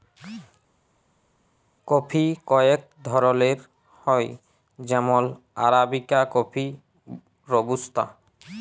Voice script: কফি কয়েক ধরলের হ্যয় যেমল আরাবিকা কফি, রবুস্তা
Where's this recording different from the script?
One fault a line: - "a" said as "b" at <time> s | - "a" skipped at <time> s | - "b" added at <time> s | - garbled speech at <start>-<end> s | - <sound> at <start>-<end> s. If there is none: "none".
none